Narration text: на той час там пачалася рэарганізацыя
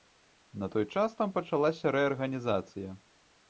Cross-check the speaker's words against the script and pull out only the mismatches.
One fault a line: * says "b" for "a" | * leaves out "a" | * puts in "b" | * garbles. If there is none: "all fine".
all fine